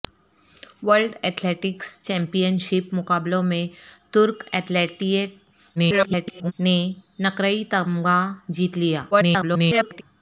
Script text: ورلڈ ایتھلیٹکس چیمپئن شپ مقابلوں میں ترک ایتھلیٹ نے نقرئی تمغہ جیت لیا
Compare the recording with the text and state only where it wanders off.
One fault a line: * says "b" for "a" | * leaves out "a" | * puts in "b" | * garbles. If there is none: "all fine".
* garbles
* garbles